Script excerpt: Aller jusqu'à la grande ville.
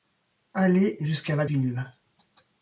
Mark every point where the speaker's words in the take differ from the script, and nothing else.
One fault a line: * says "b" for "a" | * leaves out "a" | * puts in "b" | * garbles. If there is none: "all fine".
* leaves out "grande"